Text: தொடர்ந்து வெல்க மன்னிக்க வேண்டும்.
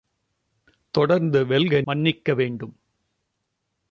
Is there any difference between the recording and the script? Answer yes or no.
no